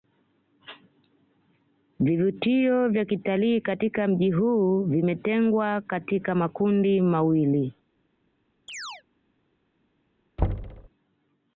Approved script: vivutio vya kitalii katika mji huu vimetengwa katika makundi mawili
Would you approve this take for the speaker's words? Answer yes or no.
yes